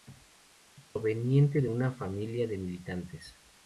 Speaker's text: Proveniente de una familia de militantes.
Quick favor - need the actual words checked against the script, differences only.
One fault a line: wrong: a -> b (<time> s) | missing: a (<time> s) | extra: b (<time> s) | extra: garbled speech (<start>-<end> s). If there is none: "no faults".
no faults